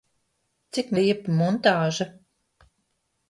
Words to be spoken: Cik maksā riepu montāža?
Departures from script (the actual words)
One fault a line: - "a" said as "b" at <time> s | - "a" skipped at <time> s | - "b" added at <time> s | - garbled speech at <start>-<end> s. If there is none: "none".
- "maksā" skipped at 0.9 s